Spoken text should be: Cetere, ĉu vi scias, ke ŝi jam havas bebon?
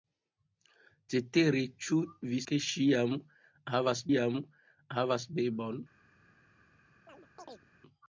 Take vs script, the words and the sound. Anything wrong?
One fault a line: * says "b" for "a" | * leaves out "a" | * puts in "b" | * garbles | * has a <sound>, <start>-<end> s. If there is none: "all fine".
* leaves out "scias"
* puts in "jam havas"
* has a chirp, 7.1-7.7 s